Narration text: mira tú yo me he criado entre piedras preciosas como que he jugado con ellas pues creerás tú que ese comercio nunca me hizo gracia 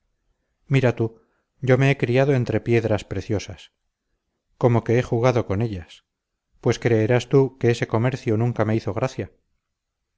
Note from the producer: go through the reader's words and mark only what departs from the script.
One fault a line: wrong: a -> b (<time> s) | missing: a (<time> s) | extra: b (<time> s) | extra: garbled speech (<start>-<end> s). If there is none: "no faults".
no faults